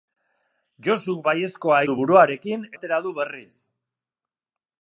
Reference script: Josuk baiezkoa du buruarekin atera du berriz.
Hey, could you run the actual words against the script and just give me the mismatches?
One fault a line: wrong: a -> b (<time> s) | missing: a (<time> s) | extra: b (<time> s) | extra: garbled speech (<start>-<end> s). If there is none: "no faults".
no faults